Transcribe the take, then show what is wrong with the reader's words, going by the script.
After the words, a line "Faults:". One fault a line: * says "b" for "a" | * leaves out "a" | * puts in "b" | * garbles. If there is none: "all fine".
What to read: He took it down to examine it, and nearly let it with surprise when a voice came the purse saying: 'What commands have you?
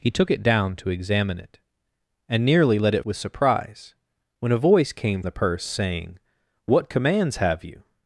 He took it down to examine it, and nearly let it with surprise when a voice came the purse saying: 'What commands have you?
Faults:
all fine